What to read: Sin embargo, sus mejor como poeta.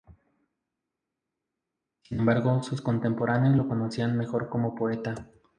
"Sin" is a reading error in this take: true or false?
false